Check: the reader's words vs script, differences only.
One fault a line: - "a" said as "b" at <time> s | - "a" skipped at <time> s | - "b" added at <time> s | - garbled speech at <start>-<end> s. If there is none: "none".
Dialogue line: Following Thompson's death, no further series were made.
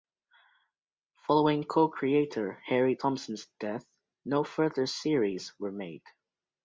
- "co creator Harry" added at 1.6 s